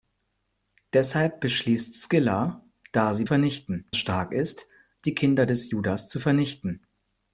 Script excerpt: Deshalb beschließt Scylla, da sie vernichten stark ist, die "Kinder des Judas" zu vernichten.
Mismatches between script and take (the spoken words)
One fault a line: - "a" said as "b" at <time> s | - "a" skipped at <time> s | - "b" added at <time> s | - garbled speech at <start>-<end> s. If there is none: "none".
none